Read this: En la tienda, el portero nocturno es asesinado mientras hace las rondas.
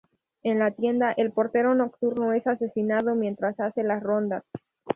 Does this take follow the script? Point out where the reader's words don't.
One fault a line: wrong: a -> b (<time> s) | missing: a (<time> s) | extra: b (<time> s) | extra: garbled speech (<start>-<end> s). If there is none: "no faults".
no faults